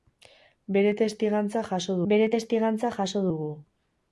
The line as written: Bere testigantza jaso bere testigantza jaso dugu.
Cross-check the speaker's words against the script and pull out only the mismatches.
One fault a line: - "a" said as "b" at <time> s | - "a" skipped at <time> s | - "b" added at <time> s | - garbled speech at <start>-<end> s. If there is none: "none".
none